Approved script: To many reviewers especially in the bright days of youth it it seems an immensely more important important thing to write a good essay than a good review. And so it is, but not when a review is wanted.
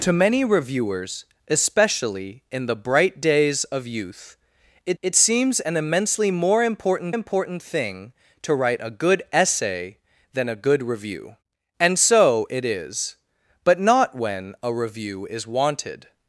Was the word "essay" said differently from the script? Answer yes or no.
no